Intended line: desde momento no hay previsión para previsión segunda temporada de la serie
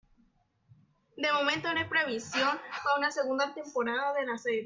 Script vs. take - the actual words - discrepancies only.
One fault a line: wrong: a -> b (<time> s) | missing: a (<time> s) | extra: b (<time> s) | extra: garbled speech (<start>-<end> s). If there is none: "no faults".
wrong: desde -> de (1.1 s)
wrong: previsión -> una (3.0 s)